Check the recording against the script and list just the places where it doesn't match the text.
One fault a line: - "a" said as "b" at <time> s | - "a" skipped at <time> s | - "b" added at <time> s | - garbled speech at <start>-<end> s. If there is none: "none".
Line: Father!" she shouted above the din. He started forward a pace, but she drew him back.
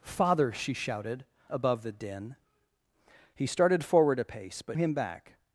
- "she drew" skipped at 4.8 s